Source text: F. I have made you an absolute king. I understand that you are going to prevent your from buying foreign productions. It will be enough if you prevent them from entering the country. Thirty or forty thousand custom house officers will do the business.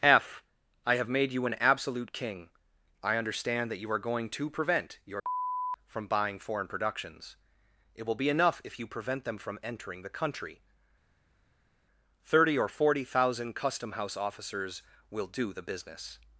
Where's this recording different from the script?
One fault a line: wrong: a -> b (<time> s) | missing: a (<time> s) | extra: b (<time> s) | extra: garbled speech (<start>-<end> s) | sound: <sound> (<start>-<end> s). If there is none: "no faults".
no faults